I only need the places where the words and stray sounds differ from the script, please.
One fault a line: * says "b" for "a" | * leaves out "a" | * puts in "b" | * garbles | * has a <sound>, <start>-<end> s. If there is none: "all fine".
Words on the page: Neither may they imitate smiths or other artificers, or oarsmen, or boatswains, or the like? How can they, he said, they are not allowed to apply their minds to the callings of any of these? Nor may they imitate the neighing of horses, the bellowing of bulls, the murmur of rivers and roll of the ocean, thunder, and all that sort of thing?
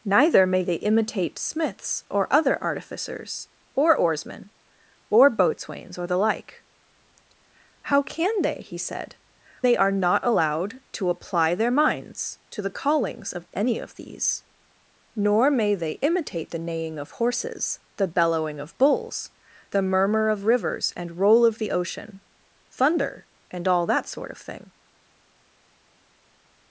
all fine